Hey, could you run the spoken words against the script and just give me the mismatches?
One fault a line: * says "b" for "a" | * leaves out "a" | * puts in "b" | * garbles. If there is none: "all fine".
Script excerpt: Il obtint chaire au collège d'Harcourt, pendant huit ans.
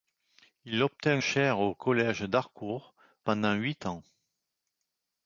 all fine